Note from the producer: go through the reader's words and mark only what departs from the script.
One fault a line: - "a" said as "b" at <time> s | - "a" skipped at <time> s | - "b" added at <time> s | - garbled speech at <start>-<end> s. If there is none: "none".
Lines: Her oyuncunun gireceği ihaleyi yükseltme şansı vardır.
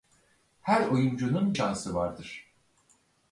- "gireceği ihaleyi yükseltme" skipped at 1.6 s